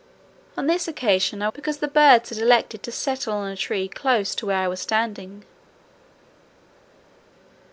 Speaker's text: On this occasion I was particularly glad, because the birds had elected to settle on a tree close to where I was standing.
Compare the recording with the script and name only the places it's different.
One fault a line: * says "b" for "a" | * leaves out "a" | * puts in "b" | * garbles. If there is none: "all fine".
* leaves out "was particularly glad"